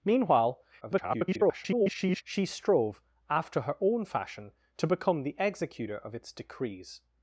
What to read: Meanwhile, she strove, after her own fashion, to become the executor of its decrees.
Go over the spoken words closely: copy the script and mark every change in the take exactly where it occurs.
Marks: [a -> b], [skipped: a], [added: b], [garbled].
Meanwhile, [garbled] she strove, after her own fashion, to become the executor of its decrees.